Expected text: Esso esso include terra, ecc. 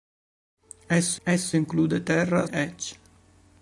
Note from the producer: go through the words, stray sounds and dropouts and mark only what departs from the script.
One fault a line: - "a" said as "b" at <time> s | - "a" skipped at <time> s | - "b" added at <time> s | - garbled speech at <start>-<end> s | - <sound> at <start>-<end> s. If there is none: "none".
none